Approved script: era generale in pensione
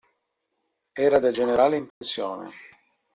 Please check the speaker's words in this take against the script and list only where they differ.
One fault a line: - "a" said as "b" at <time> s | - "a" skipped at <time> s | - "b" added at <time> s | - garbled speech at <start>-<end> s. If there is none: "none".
- "del" added at 1.2 s